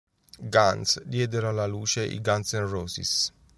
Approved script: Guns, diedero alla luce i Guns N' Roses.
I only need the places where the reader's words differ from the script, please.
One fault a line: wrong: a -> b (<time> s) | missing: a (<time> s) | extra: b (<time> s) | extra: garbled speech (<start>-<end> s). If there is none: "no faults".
no faults